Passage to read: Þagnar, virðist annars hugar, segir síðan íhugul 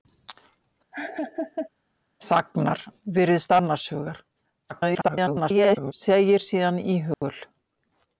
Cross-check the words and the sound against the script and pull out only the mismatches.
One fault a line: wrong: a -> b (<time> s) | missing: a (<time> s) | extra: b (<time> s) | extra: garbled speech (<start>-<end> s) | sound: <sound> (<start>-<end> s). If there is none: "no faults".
sound: laugh (0.9-1.7 s)
extra: garbled speech (4.7-5.9 s)
sound: dropout (7.1-7.2 s)